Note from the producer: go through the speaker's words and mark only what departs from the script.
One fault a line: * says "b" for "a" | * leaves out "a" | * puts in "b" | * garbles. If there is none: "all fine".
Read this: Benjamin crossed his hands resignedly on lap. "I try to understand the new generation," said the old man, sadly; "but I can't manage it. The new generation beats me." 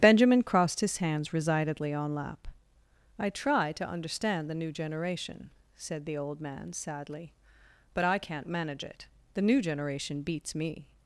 all fine